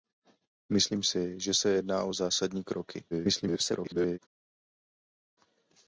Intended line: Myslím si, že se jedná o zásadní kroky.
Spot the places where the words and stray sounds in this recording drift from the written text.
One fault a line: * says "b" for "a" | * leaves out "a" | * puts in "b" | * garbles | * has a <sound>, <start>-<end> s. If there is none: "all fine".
* garbles